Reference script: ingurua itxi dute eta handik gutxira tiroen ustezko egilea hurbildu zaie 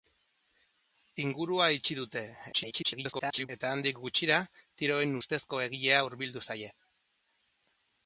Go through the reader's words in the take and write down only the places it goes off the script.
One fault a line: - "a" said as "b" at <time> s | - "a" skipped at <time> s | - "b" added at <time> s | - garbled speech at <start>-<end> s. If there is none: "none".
- garbled speech at 2.5-3.5 s